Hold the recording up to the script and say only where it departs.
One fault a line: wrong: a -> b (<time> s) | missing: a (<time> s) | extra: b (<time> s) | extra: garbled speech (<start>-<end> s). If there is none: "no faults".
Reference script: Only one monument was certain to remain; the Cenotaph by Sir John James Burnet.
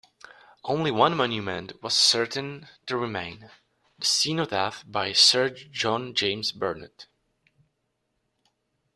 no faults